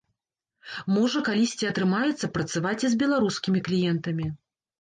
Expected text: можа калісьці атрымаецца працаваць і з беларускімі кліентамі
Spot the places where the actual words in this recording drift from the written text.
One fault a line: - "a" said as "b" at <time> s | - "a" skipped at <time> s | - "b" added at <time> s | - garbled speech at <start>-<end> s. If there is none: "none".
none